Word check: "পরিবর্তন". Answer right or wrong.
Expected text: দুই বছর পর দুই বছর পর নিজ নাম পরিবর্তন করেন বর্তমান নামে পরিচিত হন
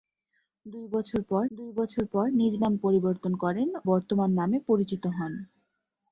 right